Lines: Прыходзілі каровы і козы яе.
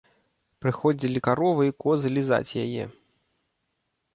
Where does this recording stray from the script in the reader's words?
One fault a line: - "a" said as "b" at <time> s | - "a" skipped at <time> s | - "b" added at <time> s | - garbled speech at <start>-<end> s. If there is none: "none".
- "лізаць" added at 2.2 s